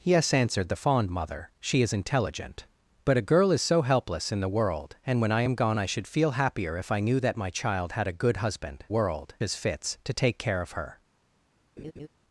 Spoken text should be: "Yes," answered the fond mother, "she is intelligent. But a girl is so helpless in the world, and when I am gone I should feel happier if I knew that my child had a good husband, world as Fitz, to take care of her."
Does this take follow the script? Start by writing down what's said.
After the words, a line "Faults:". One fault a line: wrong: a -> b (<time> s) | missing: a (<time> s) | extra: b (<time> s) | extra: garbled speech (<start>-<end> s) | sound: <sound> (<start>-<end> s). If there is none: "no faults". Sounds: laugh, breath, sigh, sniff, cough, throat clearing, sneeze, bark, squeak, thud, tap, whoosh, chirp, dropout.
"Yes," answered the fond mother, "she is intelligent. But a girl is so helpless in the world, and when I am gone I should feel happier if I knew that my child had a good husband, world as Fitz, to take care of her."
Faults:
sound: laugh (11.8-12.1 s)